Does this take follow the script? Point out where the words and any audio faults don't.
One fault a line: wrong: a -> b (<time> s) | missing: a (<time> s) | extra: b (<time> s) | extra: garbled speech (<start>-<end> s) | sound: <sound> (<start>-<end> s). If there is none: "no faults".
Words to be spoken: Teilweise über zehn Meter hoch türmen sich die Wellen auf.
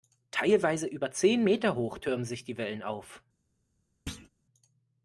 sound: thud (4.1-4.3 s)